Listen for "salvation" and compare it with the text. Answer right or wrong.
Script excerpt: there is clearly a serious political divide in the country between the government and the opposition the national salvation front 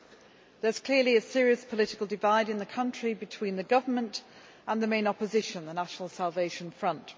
right